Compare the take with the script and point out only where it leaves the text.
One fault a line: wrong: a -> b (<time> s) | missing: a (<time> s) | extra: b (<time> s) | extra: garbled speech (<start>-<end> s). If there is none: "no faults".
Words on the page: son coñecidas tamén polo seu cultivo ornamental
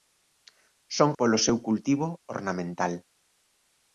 missing: coñecidas tamén (1.1 s)